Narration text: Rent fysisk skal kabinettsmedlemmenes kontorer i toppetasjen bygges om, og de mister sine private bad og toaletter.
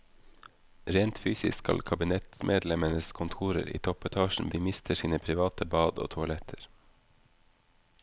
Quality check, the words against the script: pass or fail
fail